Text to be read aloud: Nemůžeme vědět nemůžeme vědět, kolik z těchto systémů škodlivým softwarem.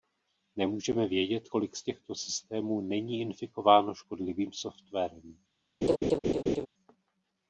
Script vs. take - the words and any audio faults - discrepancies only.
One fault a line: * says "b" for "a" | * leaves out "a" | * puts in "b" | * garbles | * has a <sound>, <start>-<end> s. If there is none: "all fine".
* leaves out "nemůžeme vědět"
* puts in "není infikováno"
* has a laugh, 5.8-6.7 s